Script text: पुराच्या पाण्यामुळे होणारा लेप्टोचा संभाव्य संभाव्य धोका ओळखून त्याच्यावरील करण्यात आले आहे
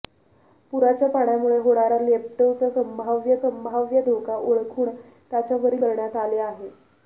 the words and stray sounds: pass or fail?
pass